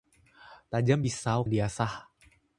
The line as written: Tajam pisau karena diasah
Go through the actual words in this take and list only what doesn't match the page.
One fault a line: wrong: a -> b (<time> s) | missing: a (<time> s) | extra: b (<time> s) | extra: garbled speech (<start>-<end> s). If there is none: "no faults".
missing: karena (1.4 s)